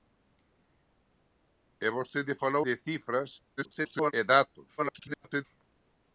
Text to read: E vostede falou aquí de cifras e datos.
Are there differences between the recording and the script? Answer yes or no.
yes